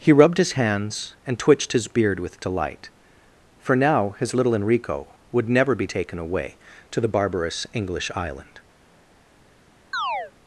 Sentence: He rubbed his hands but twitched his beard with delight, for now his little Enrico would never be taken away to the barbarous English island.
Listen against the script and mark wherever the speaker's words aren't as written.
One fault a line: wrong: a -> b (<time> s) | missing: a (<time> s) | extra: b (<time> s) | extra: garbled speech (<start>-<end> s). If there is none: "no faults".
wrong: but -> and (1.3 s)